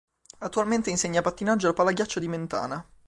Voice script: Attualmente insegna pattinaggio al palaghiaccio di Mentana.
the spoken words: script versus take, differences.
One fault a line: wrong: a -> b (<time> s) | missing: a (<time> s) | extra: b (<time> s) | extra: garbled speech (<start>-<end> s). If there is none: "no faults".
no faults